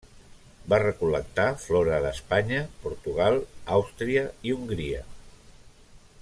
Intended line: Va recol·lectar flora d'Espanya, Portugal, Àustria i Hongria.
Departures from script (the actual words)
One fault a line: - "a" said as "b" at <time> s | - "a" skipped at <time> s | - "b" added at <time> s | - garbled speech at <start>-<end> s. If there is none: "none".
none